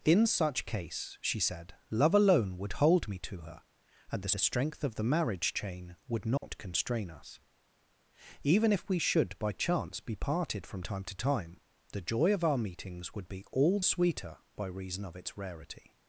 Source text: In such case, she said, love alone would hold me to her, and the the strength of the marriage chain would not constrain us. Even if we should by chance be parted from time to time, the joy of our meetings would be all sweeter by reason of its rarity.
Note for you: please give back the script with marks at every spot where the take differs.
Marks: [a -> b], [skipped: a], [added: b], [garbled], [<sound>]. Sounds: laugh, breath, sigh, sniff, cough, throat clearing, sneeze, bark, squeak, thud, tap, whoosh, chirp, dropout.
In such case, she said, love alone would hold me to her, and the the strength of the marriage chain would not [dropout] constrain us. Even if we should by chance be parted from time to time, the joy of our meetings would be all sweeter by reason of its rarity.